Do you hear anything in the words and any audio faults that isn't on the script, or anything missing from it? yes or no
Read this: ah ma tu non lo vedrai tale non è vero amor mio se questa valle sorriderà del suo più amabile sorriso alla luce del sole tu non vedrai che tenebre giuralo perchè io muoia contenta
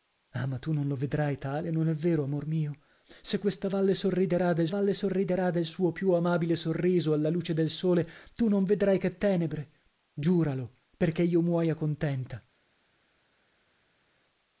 yes